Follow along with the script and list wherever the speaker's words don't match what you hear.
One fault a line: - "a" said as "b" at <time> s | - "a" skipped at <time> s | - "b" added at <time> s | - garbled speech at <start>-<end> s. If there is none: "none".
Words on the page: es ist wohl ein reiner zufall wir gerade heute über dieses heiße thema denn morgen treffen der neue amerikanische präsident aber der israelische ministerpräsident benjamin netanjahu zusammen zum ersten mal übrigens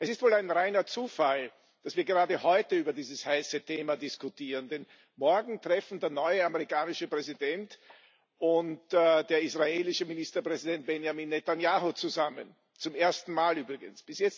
- "dass" added at 1.8 s
- "diskutieren" added at 4.0 s
- "aber" said as "und" at 8.4 s